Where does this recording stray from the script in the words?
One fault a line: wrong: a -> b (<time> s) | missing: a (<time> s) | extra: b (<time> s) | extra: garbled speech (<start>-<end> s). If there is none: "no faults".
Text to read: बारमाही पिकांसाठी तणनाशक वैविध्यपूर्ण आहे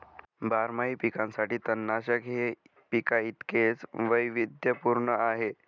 extra: हे पिकांइतकेच (2.2 s)